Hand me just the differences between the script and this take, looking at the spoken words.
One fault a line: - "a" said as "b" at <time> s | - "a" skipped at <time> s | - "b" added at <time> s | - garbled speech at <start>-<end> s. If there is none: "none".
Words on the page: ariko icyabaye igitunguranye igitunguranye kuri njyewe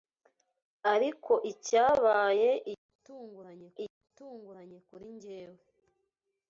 none